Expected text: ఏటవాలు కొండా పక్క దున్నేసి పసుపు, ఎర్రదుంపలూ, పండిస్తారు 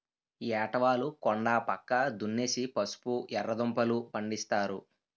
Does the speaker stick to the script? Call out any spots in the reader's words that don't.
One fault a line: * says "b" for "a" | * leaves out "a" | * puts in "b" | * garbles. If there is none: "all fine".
all fine